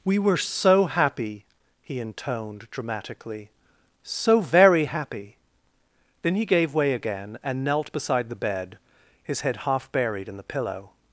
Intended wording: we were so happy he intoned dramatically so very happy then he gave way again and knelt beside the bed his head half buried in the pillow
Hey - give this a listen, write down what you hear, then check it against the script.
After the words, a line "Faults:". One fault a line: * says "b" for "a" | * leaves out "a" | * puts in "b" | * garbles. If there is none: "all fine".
we were so happy he intoned dramatically so very happy then he gave way again and knelt beside the bed his head half buried in the pillow
Faults:
all fine